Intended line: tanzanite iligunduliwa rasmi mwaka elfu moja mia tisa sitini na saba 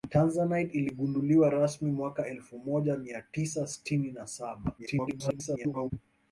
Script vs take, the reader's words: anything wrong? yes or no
yes